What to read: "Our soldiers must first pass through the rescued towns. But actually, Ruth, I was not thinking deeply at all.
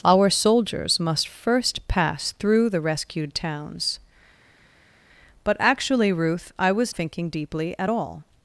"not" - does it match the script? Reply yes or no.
no